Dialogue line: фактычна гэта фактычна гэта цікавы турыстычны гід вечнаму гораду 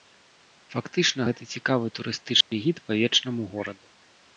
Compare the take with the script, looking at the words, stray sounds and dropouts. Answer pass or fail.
fail